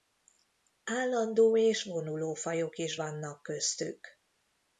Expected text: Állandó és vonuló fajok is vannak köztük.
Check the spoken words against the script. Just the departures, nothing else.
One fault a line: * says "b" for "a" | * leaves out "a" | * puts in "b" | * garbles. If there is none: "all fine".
all fine